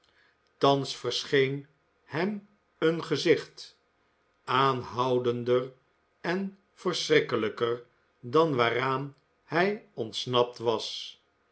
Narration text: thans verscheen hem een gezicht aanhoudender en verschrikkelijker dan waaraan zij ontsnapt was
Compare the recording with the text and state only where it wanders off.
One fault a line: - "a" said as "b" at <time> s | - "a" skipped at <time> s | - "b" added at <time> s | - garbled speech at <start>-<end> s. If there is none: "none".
- "zij" said as "hij" at 9.4 s